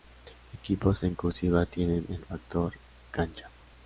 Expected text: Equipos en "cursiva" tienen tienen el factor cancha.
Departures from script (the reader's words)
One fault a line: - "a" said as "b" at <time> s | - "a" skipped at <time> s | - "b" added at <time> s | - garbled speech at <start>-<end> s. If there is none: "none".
- "tienen" skipped at 2.0 s